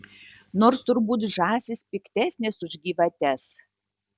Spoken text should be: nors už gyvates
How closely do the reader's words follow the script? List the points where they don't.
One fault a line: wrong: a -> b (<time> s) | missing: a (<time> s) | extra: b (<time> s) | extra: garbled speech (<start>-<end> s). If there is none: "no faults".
extra: turbūt žąsys piktesnės (0.9 s)